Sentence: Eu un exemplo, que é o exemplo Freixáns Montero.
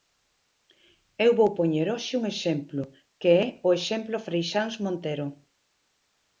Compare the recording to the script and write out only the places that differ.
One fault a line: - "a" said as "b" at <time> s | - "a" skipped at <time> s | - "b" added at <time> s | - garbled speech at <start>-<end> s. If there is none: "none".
- "vou poñer hoxe" added at 1.4 s